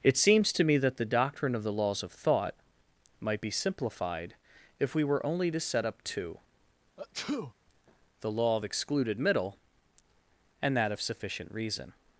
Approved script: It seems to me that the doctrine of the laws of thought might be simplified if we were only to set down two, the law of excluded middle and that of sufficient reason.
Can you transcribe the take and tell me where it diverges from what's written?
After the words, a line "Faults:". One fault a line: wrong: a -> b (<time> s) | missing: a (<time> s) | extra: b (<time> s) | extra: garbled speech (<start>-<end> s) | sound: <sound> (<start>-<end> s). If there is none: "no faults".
It seems to me that the doctrine of the laws of thought might be simplified if we were only to set up two, the law of excluded middle and that of sufficient reason.
Faults:
wrong: down -> up (5.8 s)
sound: sneeze (7.0-7.5 s)